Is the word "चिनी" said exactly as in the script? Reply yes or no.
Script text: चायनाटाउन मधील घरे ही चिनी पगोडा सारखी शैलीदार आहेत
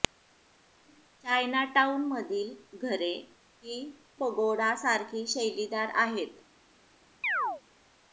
no